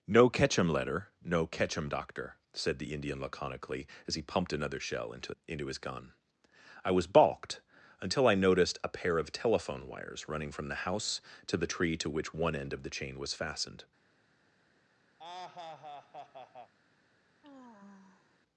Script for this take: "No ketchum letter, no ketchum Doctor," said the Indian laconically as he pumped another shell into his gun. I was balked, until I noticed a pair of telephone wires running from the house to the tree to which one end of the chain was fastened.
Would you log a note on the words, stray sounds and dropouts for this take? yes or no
yes